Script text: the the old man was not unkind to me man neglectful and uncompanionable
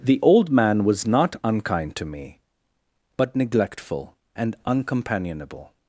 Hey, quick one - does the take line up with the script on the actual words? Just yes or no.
no